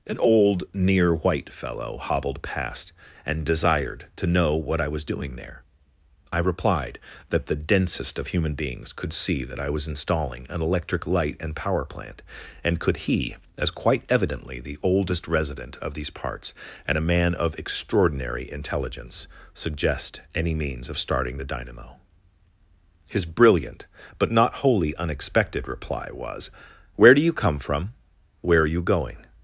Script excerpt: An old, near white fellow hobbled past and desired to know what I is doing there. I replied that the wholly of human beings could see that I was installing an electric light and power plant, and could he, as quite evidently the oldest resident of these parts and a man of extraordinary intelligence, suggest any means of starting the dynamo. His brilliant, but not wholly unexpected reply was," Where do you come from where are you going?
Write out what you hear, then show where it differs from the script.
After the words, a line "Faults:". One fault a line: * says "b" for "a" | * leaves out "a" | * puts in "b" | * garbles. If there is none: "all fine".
An old, near white fellow hobbled past and desired to know what I was doing there. I replied that the densest of human beings could see that I was installing an electric light and power plant, and could he, as quite evidently the oldest resident of these parts and a man of extraordinary intelligence, suggest any means of starting the dynamo. His brilliant, but not wholly unexpected reply was," Where do you come from where are you going?
Faults:
* says "was" for "is"
* says "densest" for "wholly"